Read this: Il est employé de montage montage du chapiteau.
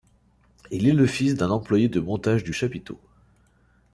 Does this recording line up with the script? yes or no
no